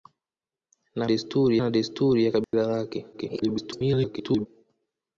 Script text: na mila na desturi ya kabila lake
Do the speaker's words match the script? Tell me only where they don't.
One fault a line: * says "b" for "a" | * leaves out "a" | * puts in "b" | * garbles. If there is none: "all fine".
* says "desturi" for "mila"
* garbles